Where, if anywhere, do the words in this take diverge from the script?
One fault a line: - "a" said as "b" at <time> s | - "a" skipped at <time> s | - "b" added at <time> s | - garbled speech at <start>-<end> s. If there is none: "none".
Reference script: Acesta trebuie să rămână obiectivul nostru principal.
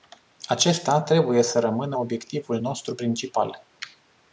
none